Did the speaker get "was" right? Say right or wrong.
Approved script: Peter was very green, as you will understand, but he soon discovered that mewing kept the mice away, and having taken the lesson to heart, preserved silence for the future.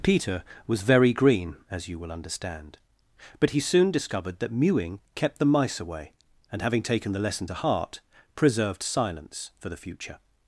right